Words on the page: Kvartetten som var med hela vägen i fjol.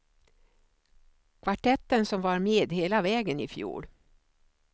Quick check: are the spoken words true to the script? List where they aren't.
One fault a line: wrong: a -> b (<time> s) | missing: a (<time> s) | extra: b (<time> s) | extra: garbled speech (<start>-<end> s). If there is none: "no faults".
no faults